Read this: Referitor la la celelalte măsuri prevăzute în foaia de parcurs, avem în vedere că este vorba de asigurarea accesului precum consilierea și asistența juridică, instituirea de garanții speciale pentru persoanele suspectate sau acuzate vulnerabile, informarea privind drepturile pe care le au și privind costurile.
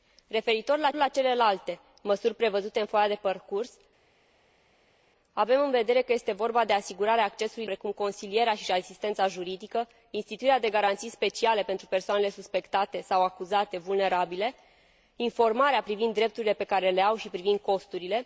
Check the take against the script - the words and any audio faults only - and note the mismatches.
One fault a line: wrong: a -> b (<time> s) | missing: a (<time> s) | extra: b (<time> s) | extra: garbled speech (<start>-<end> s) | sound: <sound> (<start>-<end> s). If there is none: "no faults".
no faults